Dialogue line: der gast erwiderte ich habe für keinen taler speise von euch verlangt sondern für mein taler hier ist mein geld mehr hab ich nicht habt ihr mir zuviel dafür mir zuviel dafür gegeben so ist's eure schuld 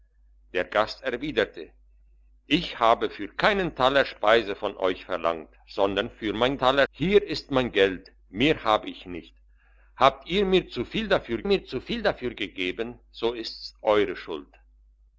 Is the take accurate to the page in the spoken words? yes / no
yes